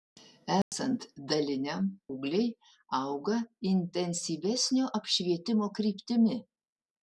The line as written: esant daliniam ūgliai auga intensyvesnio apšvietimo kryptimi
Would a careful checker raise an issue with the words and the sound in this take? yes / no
yes